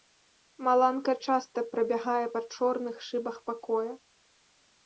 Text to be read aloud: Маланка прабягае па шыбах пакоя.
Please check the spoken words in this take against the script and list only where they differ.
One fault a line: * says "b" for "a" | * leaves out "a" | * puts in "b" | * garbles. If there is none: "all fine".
* puts in "часта"
* puts in "чорных"